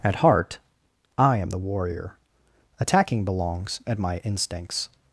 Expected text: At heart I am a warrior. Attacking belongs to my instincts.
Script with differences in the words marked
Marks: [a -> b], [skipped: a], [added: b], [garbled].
At heart I am [a -> the] warrior. Attacking belongs [to -> at] my instincts.